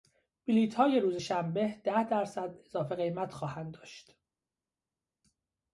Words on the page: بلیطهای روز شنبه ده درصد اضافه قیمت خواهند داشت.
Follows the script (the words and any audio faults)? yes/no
yes